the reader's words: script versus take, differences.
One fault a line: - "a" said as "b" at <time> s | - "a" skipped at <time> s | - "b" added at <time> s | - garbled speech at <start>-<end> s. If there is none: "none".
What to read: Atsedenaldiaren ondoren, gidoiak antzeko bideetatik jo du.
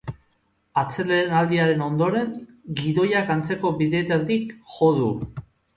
none